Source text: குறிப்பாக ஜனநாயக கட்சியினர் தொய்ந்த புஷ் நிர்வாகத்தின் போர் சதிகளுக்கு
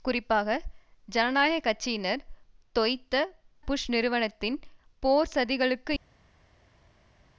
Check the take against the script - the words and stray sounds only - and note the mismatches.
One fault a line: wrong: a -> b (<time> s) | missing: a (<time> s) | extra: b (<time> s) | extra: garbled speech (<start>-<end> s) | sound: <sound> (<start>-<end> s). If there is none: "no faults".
no faults